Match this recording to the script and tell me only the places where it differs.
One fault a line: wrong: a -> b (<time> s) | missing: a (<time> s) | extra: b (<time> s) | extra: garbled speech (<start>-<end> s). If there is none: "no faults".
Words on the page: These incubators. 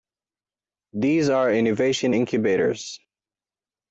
extra: are innovation (1.3 s)